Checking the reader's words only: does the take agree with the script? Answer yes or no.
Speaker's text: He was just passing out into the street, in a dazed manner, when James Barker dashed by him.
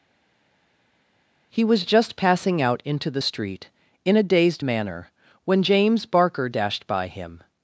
yes